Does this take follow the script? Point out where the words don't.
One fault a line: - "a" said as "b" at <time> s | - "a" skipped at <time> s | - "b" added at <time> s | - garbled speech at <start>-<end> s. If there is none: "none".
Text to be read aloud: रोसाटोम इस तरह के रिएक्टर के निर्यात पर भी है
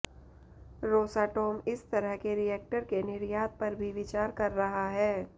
- "विचार कर रहा" added at 3.9 s